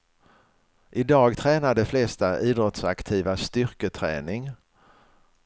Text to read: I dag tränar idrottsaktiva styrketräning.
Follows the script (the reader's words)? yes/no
no